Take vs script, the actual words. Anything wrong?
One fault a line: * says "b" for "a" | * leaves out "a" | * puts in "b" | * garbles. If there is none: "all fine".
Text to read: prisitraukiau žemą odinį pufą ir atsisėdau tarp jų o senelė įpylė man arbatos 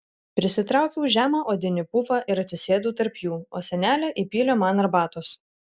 all fine